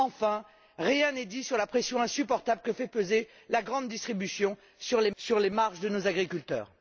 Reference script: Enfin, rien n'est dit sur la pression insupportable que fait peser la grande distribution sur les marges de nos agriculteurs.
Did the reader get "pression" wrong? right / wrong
right